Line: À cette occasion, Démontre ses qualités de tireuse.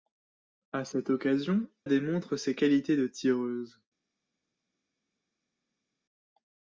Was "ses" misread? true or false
false